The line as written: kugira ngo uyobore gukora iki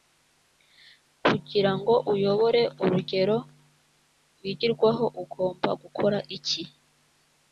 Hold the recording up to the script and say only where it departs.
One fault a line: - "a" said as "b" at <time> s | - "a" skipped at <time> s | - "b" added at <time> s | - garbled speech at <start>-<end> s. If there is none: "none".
- "urugero rwigirwaho ugomba" added at 2.8 s